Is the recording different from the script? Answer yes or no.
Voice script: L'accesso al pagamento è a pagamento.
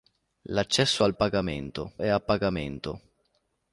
no